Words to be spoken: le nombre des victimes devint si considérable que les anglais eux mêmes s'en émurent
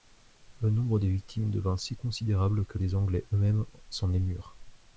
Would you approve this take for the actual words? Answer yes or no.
yes